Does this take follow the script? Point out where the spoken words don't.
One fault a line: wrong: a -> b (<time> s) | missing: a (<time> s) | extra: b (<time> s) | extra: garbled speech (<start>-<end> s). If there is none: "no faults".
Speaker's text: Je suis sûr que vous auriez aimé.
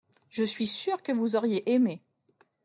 no faults